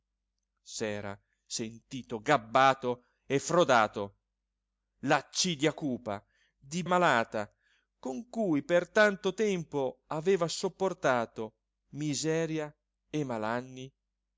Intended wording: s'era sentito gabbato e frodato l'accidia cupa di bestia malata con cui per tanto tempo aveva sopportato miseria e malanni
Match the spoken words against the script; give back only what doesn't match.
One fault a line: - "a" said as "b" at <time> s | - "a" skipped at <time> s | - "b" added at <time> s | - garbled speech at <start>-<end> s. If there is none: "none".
- "bestia" skipped at 6.8 s